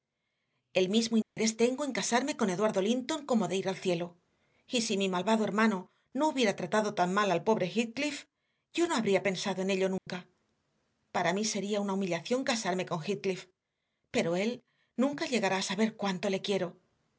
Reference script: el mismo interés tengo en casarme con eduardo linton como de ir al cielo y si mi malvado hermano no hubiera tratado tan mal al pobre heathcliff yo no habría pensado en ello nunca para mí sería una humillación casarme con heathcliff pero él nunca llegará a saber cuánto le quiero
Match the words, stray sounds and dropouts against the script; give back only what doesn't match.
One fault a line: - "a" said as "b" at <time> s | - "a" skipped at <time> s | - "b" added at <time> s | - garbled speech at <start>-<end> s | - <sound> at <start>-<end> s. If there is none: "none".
- dropout at 1.2-1.4 s
- dropout at 10.0-10.1 s